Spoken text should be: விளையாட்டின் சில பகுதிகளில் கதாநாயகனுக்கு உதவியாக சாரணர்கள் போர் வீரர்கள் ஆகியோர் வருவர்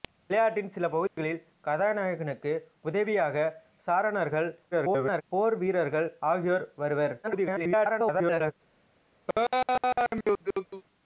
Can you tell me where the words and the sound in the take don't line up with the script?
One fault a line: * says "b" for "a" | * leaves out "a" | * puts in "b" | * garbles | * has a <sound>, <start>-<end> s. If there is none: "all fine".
* has a dropout, 1.1-1.2 s
* garbles
* garbles
* has a laugh, 9.3-10.8 s